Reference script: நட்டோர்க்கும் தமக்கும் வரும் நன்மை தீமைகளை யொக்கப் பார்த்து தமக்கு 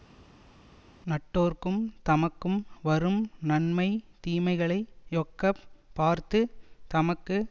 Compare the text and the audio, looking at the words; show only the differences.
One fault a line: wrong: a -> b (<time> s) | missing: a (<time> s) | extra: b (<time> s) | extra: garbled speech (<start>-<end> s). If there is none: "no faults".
no faults